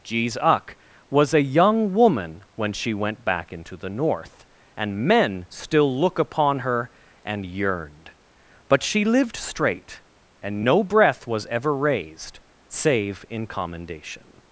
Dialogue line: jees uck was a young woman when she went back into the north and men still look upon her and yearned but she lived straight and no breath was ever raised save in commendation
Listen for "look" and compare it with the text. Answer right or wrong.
right